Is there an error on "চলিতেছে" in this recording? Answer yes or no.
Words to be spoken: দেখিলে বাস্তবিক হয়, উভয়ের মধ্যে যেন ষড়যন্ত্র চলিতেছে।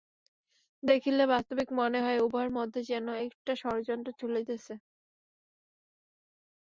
no